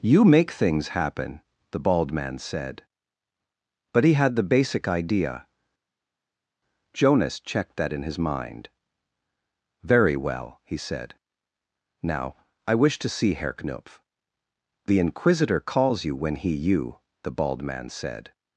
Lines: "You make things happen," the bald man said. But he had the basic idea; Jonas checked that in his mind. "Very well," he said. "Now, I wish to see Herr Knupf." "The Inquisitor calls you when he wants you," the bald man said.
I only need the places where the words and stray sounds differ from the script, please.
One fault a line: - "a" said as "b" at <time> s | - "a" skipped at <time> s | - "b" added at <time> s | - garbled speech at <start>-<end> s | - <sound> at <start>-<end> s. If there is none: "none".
- "wants" skipped at 16.6 s